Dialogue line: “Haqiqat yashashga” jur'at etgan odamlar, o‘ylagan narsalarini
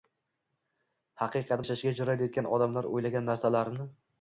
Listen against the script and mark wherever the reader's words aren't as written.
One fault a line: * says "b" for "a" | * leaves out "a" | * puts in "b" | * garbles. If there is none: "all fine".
all fine